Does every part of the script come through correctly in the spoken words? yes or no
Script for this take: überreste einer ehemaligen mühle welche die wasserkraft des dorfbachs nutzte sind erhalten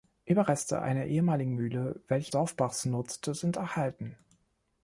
no